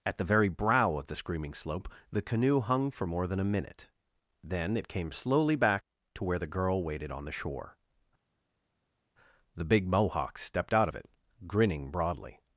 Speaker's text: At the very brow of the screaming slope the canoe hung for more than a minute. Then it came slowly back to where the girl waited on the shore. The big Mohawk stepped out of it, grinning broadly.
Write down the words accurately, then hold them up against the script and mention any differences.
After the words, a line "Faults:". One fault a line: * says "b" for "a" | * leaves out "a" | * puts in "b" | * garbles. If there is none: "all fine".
At the very brow of the screaming slope the canoe hung for more than a minute. Then it came slowly back to where the girl waited on the shore. The big Mohawk stepped out of it, grinning broadly.
Faults:
all fine